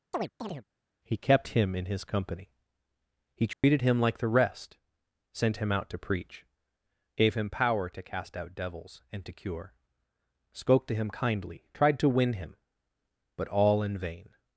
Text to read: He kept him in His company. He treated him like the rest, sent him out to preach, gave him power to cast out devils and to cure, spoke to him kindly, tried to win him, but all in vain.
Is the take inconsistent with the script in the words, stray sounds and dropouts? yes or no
yes